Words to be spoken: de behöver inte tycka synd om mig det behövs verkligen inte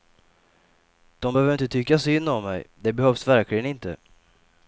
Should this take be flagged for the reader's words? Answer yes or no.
no